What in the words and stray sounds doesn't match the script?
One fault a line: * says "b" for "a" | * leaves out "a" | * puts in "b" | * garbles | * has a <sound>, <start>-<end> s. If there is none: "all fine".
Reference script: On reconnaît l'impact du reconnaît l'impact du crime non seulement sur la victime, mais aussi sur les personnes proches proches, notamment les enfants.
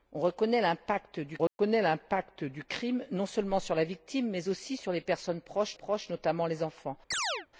* has a dropout, 1.5-1.6 s
* has a chirp, 7.1-7.5 s